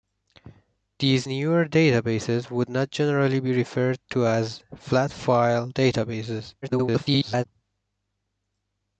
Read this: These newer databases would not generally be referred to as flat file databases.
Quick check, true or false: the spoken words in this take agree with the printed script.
false